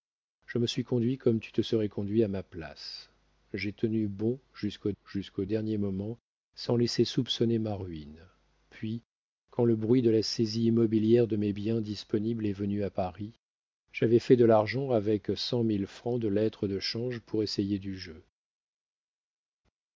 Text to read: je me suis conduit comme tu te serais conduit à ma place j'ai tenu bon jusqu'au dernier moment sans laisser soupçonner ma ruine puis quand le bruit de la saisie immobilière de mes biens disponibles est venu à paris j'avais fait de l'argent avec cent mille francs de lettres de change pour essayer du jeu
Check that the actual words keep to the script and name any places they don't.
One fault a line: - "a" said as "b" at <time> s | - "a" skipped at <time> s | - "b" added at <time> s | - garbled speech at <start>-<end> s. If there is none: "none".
- "jusqu'au" added at 5.0 s